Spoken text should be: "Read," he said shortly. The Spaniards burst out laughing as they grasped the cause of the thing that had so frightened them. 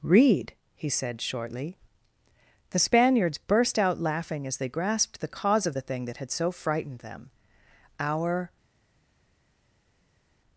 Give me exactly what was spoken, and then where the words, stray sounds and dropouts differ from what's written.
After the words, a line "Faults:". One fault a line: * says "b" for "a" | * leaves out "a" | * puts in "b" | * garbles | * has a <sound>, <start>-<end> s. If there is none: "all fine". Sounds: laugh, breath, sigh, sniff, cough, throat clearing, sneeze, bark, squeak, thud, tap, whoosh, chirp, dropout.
"Read," he said shortly. The Spaniards burst out laughing as they grasped the cause of the thing that had so frightened them. "Our
Faults:
* puts in "Our"